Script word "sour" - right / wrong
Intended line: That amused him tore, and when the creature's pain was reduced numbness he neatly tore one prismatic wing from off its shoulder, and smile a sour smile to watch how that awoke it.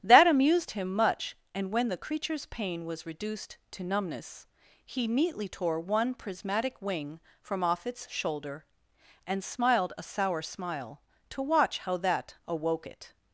right